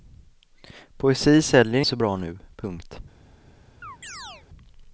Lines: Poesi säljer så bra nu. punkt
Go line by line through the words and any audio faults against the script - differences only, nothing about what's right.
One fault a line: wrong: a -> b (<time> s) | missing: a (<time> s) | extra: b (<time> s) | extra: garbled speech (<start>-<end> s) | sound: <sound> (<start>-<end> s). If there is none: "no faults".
sound: chirp (3.8-4.5 s)